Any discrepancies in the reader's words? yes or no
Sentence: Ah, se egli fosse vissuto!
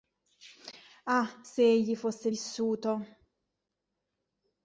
no